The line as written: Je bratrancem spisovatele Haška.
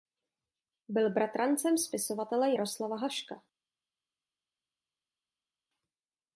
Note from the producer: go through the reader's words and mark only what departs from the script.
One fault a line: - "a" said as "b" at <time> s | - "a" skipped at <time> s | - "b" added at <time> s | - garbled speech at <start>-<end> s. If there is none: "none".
- "Je" said as "Byl" at 0.9 s
- "Jaroslava" added at 2.5 s